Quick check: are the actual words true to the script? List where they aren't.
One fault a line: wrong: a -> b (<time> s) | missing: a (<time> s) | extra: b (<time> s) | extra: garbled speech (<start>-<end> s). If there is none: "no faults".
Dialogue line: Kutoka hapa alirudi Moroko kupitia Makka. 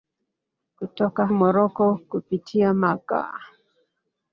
missing: hapa alirudi (1.3 s)